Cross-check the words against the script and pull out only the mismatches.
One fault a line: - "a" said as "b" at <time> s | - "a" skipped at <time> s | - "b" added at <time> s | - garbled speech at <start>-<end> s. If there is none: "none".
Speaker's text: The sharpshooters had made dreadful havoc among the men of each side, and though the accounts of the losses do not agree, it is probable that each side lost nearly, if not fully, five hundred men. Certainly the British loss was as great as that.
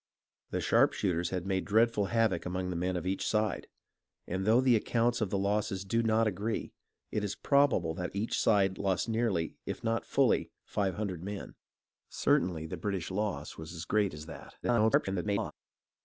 - garbled speech at 14.6-15.5 s